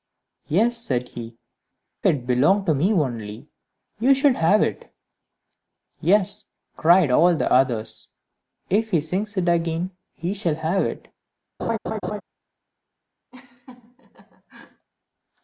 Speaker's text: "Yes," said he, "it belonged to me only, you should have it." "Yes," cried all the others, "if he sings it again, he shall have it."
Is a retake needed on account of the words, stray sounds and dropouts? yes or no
yes